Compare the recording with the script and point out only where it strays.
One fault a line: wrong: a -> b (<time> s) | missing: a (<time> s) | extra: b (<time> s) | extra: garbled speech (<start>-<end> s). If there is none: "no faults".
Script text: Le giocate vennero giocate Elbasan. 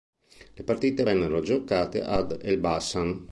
wrong: giocate -> partite (0.6 s)
extra: ad (2.0 s)